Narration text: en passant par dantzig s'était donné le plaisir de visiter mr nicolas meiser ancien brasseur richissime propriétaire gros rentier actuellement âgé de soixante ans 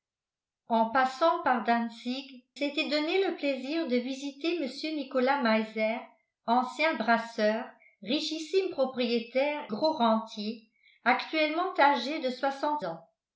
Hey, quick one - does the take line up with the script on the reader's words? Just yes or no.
yes